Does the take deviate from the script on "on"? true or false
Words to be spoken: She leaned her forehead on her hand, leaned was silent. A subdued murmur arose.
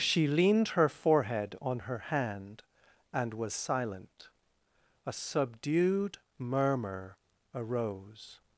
false